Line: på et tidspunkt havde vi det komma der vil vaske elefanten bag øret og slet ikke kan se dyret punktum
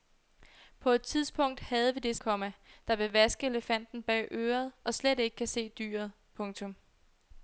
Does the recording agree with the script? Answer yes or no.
yes